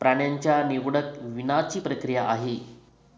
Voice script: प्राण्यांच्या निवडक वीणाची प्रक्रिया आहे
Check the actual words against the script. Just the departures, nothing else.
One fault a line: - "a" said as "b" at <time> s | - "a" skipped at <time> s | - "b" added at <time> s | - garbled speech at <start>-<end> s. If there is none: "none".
none